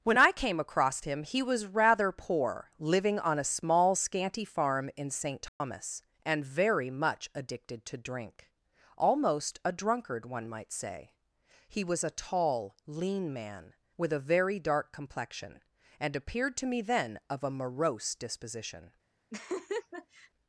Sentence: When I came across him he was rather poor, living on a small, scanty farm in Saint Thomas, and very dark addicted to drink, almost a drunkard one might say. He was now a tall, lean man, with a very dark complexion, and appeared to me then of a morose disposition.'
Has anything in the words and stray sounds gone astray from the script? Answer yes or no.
yes